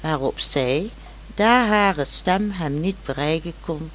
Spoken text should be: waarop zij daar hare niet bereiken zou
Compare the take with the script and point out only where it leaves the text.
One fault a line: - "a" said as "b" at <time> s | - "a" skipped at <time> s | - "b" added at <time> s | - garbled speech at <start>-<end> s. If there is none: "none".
- "stem hem" added at 2.0 s
- "zou" said as "kon" at 3.6 s